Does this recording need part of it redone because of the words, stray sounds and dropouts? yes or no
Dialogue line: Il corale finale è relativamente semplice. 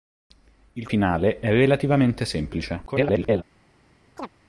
yes